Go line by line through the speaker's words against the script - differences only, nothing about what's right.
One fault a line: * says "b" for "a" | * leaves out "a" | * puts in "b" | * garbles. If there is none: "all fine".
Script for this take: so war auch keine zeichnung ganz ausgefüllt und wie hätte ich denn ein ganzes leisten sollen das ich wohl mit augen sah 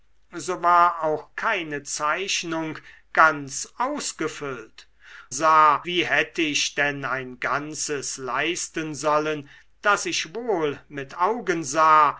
* says "sah" for "und"